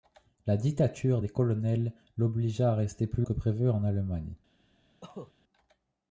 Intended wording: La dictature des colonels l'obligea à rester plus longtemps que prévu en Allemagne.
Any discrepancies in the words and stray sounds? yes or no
yes